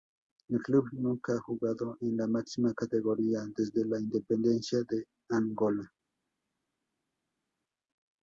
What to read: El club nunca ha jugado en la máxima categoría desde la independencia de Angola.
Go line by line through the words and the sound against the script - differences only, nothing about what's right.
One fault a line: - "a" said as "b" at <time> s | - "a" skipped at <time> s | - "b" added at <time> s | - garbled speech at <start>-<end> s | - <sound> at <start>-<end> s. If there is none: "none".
none